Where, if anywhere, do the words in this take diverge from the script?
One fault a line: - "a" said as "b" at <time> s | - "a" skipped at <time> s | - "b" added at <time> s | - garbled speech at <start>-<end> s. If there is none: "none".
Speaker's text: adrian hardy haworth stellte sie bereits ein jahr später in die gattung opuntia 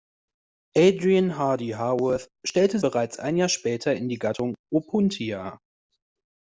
- "sie" skipped at 2.8 s